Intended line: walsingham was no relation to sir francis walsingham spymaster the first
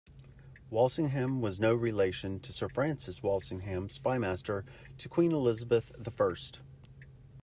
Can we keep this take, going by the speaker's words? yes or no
no